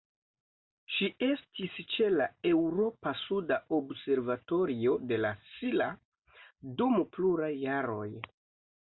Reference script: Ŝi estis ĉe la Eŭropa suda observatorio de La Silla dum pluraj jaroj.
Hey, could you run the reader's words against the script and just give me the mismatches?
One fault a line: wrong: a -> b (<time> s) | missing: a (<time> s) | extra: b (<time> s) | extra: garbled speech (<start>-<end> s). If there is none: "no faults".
no faults